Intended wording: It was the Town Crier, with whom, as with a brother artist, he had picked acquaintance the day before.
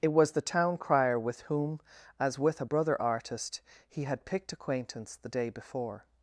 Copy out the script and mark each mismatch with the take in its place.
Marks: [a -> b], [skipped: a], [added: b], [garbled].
It was the Town Crier, with whom, as with a brother artist, he had picked acquaintance the day before.